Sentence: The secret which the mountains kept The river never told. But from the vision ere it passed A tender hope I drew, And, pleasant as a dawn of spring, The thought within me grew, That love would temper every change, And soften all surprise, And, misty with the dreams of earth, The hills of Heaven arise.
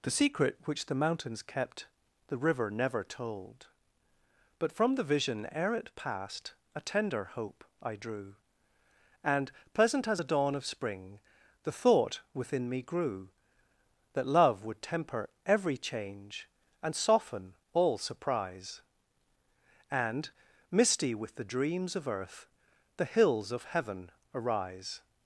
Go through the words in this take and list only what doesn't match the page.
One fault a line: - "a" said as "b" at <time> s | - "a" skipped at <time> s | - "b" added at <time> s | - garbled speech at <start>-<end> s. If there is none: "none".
none